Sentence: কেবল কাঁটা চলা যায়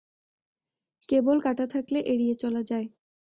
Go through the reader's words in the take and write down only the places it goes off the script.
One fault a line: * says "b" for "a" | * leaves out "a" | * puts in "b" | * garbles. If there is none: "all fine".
* puts in "থাকলে এড়িয়ে"